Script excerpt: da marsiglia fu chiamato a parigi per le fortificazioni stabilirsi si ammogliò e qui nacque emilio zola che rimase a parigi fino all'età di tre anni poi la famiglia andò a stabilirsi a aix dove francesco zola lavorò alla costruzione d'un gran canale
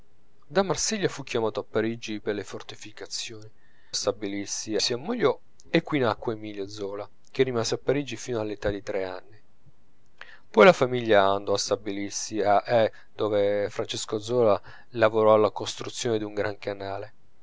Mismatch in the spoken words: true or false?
false